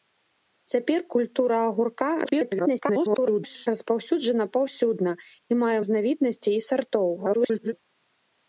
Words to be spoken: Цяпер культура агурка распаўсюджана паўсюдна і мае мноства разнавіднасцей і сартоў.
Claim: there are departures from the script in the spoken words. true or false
true